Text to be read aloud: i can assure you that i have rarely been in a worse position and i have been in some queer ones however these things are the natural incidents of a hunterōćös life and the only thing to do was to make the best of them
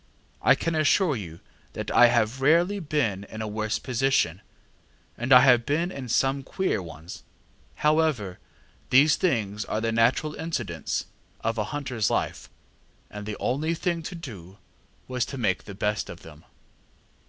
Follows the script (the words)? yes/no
yes